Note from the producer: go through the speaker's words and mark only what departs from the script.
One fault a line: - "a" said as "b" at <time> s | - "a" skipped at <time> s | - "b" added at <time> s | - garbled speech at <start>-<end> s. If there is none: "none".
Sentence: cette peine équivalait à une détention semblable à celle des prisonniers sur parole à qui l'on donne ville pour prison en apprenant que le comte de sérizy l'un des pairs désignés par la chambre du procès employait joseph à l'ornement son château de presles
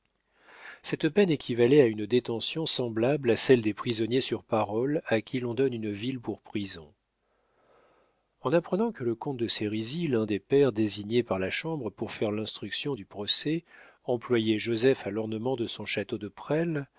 - "une" added at 5.7 s
- "pour faire l'instruction" added at 11.9 s
- "de" added at 15.5 s